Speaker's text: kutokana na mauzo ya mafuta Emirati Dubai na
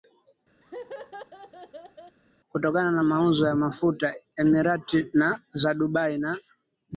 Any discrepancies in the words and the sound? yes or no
yes